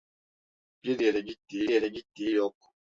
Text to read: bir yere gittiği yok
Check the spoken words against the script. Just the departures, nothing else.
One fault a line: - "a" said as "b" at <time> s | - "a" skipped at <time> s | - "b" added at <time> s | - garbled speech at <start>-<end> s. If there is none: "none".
- "yere gittiği" added at 1.7 s